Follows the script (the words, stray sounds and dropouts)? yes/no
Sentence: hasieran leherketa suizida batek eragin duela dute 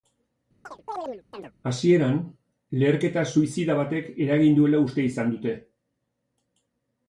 no